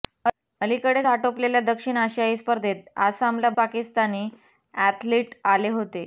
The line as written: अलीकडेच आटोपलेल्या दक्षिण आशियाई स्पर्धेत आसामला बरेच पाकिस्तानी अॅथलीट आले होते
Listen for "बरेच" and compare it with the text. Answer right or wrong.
wrong